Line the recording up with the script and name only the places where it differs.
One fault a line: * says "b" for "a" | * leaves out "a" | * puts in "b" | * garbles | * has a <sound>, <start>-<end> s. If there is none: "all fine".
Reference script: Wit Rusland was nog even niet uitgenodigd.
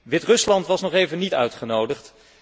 all fine